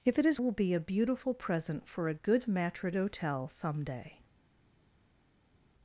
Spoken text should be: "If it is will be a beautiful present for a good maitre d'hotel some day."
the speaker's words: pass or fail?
pass